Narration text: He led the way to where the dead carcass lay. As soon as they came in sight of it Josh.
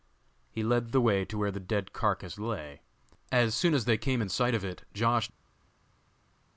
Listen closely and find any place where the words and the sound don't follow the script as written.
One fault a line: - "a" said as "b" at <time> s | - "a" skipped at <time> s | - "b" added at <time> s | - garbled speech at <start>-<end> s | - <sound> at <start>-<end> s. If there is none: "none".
none